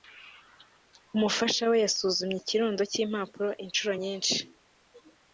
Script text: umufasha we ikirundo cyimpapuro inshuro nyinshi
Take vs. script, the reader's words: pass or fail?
fail